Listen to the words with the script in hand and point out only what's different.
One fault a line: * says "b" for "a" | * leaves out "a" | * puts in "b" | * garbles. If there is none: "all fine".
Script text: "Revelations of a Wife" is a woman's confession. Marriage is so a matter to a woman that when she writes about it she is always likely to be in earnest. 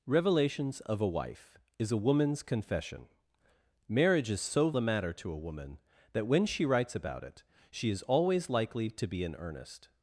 all fine